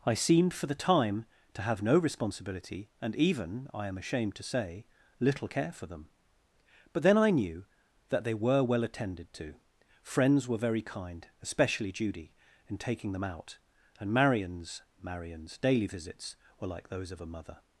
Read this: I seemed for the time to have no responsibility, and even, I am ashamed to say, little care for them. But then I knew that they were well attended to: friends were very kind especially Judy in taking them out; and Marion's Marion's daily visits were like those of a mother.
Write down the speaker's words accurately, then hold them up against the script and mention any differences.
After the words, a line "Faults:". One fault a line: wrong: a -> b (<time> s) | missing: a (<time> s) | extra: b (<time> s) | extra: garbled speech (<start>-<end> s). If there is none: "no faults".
I seemed for the time to have no responsibility, and even, I am ashamed to say, little care for them. But then I knew that they were well attended to: friends were very kind especially Judy in taking them out; and Marion's Marion's daily visits were like those of a mother.
Faults:
no faults